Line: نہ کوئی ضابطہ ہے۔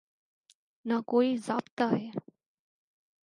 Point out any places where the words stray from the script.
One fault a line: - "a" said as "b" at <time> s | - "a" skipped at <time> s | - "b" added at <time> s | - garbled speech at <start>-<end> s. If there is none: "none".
none